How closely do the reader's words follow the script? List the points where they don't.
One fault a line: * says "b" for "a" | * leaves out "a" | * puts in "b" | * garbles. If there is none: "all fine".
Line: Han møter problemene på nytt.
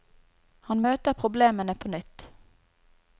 all fine